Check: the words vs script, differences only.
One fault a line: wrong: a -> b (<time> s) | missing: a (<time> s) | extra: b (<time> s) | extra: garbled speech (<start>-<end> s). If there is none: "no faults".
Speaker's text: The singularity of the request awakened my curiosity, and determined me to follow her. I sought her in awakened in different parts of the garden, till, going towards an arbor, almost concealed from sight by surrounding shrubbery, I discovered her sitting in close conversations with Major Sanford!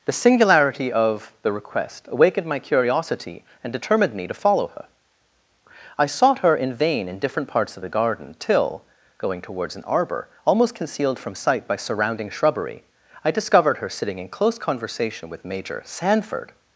wrong: awakened -> vain (6.7 s)
wrong: conversations -> conversation (14.6 s)